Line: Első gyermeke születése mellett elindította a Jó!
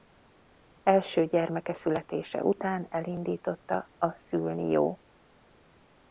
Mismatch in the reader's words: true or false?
true